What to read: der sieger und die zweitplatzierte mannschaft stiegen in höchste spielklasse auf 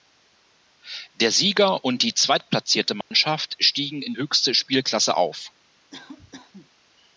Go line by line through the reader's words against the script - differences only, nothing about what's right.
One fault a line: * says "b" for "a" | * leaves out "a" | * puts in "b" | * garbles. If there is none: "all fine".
all fine